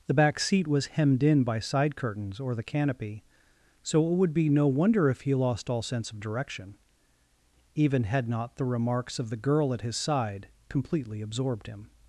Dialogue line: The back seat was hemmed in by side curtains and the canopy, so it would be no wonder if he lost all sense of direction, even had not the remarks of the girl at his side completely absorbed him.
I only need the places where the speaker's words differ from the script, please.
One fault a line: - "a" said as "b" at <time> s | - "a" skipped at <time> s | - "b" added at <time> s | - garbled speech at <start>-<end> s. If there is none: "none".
- "and" said as "or" at 2.4 s